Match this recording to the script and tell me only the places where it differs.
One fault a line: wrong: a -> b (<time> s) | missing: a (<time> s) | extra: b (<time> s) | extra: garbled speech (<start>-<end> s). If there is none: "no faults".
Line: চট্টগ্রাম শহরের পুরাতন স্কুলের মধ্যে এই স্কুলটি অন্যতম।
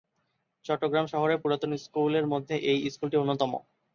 no faults